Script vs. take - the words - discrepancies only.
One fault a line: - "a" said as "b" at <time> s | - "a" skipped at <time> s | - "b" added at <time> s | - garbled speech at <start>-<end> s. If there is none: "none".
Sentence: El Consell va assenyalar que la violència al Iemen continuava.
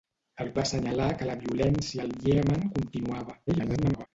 - "Consell" skipped at 0.5 s
- garbled speech at 3.5-4.1 s